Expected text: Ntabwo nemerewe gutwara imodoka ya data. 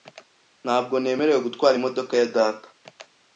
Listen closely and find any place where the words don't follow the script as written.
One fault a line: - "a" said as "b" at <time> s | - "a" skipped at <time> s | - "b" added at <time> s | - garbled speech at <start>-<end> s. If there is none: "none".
none